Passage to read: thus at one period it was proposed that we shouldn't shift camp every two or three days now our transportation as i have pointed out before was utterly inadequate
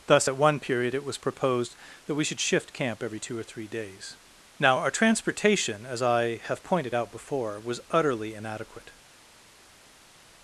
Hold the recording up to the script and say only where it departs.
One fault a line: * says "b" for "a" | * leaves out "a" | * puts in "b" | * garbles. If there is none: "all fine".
* says "should" for "shouldn't"